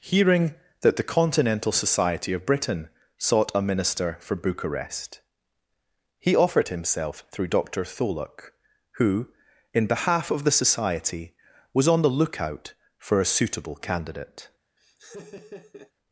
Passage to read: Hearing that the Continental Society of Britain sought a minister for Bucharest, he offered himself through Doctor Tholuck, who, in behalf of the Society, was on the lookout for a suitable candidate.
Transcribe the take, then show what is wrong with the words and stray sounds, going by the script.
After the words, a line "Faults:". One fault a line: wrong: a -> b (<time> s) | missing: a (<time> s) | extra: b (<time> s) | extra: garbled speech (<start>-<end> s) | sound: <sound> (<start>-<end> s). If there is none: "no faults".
Hearing that the Continental Society of Britain sought a minister for Bucharest, he offered himself through Doctor Tholuck, who, in behalf of the Society, was on the lookout for a suitable candidate.
Faults:
sound: laugh (14.8-15.9 s)